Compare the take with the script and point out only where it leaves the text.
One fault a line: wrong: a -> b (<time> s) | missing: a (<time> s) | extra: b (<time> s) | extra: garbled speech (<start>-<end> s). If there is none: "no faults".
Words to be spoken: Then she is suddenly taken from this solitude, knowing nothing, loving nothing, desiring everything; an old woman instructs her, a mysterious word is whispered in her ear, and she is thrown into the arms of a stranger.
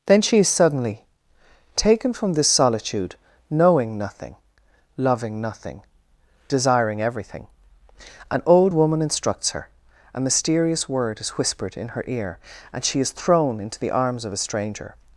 no faults